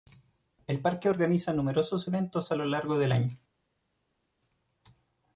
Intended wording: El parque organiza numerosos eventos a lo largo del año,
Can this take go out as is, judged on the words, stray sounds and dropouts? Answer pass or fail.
pass